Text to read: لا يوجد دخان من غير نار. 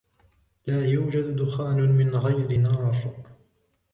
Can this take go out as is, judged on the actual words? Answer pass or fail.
pass